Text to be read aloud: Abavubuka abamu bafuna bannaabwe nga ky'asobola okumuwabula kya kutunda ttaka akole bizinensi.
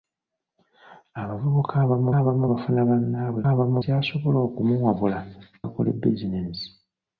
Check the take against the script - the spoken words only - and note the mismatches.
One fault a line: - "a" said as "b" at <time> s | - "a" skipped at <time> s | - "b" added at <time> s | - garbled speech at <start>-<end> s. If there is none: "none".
- "abamu" added at 2.2 s
- "nga" said as "abamu" at 3.5 s
- "kya kutunda ttaka" skipped at 5.2 s